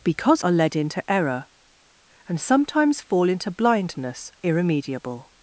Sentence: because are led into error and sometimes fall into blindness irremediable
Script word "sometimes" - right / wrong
right